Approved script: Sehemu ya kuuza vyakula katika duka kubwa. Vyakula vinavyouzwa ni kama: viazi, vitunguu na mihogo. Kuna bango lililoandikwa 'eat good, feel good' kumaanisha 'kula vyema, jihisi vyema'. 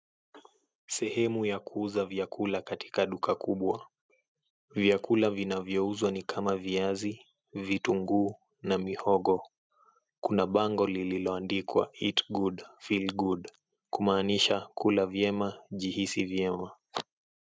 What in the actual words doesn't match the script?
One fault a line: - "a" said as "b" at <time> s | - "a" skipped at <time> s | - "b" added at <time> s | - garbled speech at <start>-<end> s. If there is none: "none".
none